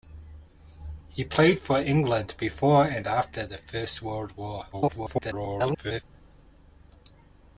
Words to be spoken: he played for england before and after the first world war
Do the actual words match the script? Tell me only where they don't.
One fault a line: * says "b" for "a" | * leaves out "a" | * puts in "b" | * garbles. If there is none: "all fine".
* garbles